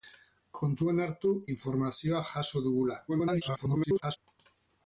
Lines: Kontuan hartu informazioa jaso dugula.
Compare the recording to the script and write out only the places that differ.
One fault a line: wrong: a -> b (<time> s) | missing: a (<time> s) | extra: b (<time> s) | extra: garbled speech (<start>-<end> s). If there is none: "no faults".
extra: garbled speech (3.1-4.2 s)